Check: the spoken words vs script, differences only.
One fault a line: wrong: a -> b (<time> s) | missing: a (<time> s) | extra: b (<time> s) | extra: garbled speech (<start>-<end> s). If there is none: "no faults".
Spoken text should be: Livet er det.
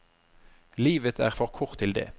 extra: for kort til (1.3 s)